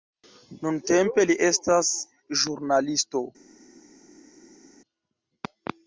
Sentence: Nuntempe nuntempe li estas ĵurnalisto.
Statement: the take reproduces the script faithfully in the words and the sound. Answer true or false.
false